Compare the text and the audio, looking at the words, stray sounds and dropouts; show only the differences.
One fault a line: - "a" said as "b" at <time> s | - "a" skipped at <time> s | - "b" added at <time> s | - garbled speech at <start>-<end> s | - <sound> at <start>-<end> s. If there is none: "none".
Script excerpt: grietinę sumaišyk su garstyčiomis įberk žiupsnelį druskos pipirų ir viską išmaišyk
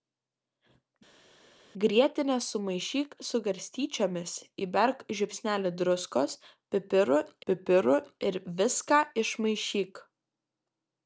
- "pipirų" added at 7.5 s